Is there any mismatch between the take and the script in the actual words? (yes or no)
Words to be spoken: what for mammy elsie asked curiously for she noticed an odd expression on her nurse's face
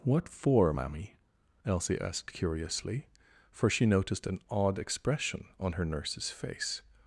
no